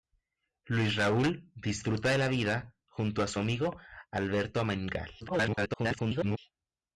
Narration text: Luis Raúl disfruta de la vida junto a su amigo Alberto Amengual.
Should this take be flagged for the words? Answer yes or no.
yes